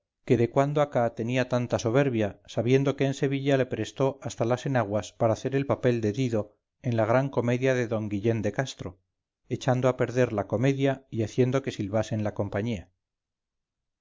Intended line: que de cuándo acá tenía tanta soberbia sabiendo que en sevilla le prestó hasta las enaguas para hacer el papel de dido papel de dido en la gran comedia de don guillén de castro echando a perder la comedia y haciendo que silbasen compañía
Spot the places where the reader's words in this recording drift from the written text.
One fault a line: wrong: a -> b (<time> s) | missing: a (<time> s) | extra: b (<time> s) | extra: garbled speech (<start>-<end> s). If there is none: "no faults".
missing: papel de dido (6.6 s)
extra: la (12.2 s)